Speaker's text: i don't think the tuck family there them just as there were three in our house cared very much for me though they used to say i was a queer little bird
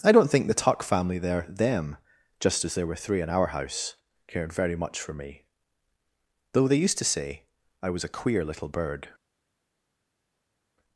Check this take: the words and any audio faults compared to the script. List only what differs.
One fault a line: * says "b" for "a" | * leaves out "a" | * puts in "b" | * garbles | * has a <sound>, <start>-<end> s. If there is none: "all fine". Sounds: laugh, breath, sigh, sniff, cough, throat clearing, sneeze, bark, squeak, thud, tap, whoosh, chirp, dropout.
all fine